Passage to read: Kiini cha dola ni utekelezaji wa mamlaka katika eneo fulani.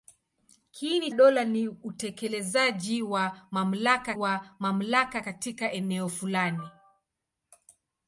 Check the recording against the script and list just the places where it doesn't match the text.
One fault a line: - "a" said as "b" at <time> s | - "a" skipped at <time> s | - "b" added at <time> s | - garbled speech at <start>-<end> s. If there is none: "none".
- "cha" skipped at 1.1 s
- "wa mamlaka" added at 4.1 s